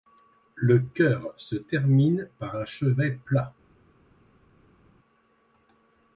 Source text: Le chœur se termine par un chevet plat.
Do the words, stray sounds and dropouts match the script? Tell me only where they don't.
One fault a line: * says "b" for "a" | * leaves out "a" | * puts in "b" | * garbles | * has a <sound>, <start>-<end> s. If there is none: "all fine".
all fine